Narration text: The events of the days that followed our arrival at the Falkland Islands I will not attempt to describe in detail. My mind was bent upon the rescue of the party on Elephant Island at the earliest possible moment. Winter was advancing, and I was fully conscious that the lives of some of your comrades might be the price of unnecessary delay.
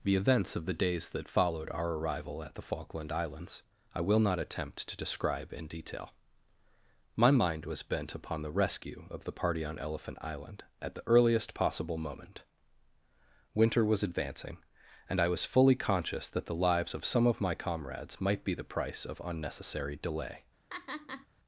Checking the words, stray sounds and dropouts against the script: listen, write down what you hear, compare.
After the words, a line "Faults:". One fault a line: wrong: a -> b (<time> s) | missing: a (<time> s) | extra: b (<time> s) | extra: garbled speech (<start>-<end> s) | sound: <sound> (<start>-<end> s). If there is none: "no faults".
The events of the days that followed our arrival at the Falkland Islands I will not attempt to describe in detail. My mind was bent upon the rescue of the party on Elephant Island at the earliest possible moment. Winter was advancing, and I was fully conscious that the lives of some of my comrades might be the price of unnecessary delay.
Faults:
wrong: your -> my (17.4 s)
sound: laugh (20.7-21.3 s)